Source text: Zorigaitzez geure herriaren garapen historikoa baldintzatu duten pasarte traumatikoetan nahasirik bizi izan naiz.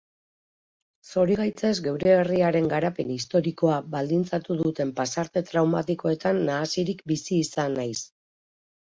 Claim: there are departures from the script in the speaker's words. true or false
false